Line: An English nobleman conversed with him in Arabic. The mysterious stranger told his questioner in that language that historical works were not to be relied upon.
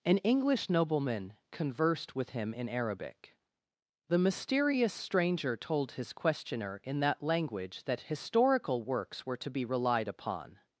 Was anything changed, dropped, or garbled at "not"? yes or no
yes